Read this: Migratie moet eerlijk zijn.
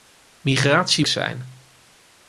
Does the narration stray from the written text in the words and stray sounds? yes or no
yes